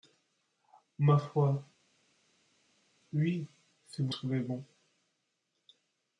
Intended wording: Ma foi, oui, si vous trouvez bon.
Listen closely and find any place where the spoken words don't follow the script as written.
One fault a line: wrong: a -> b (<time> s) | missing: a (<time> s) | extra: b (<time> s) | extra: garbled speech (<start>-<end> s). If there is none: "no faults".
no faults